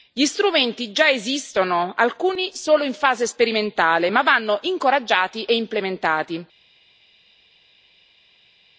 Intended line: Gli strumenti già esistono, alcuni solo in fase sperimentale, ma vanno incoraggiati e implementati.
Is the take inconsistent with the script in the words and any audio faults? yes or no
no